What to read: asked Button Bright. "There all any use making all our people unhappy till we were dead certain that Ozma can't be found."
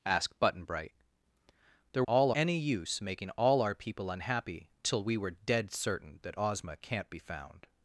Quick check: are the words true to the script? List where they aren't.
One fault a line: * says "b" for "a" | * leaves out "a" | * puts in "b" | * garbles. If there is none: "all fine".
all fine